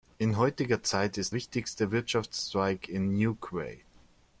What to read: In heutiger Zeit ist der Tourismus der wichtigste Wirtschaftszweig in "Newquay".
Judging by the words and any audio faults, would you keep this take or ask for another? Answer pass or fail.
fail